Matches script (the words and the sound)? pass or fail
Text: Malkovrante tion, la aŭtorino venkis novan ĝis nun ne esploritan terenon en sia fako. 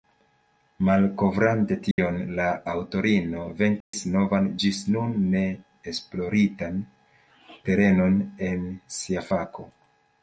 fail